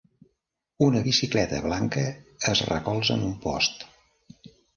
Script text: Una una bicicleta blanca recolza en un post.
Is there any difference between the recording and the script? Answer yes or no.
yes